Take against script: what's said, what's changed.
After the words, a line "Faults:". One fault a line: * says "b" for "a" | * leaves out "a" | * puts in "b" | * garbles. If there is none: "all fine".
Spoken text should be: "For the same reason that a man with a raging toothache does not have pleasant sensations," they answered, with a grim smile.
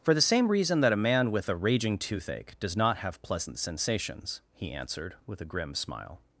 "For the same reason that a man with a raging toothache does not have pleasant sensations," he answered, with a grim smile.
Faults:
* says "he" for "they"